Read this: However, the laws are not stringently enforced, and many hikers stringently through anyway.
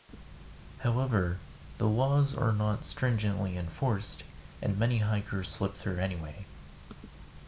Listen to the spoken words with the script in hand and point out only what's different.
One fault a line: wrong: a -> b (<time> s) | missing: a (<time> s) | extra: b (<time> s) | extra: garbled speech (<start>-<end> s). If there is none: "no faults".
wrong: stringently -> slip (5.5 s)